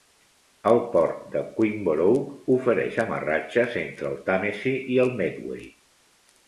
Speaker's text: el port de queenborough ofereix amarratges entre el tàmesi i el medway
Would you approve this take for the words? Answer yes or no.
yes